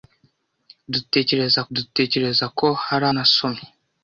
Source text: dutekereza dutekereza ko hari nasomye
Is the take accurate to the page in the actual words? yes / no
yes